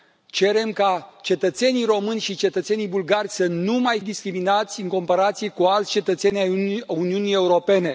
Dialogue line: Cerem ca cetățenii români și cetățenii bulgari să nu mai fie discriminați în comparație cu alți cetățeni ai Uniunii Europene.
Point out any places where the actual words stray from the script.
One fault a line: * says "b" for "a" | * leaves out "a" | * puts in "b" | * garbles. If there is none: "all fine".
* leaves out "fie"